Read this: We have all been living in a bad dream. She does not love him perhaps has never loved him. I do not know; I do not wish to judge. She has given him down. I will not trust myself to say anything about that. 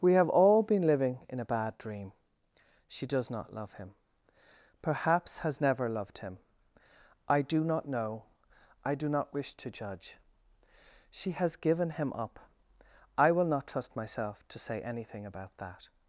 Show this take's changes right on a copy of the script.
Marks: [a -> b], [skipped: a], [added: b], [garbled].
We have all been living in a bad dream. She does not love him perhaps has never loved him. I do not know; I do not wish to judge. She has given him [down. -> up] I will not trust myself to say anything about that.